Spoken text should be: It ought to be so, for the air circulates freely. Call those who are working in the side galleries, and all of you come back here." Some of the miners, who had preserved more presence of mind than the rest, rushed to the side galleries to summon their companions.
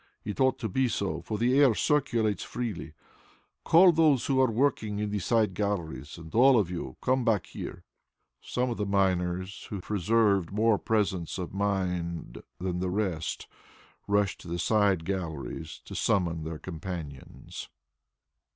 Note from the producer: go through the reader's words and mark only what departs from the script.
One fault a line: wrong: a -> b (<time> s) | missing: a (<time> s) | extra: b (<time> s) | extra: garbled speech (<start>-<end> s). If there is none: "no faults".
missing: had (9.8 s)